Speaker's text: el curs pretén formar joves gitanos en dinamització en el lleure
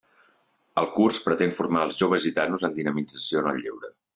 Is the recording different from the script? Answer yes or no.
yes